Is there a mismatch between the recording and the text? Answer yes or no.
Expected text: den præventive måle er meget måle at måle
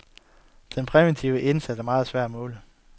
yes